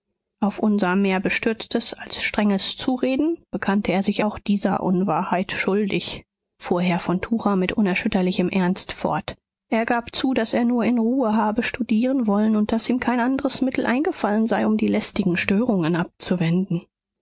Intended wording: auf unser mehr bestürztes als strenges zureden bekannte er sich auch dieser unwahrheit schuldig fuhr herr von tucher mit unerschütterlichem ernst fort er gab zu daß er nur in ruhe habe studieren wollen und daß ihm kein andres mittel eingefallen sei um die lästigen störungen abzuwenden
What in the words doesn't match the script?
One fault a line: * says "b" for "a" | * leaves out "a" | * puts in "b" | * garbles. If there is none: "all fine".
all fine